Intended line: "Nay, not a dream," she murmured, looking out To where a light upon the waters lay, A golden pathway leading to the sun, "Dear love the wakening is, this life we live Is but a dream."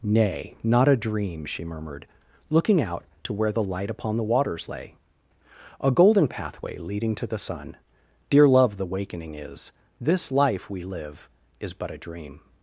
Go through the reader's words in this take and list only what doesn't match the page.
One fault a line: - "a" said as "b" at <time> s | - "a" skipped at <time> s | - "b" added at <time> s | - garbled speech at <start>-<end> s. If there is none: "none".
- "a" said as "the" at 3.5 s